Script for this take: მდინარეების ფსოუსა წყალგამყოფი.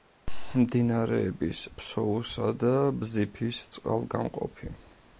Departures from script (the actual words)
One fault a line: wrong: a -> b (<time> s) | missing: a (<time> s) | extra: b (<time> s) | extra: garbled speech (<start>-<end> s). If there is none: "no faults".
extra: და ბზიფის (2.6 s)